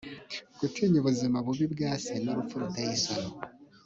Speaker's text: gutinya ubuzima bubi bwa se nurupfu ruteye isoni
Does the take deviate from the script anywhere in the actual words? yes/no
no